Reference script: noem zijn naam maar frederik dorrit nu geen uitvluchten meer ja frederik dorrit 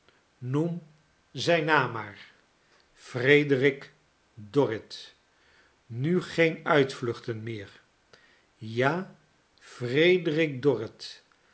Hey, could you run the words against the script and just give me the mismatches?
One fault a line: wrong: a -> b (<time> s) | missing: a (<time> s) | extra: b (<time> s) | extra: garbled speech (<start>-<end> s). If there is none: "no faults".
no faults